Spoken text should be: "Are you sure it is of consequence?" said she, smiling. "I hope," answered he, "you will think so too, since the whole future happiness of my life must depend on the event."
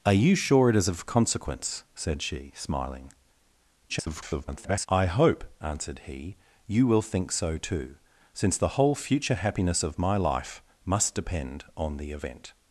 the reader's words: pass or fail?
fail